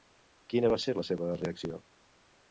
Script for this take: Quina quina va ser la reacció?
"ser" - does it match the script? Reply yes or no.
yes